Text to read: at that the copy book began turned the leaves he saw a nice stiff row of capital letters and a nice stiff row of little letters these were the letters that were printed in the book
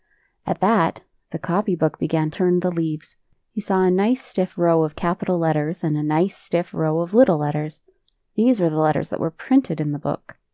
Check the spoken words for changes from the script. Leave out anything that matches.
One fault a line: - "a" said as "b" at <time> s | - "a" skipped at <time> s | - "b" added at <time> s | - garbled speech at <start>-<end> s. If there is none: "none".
none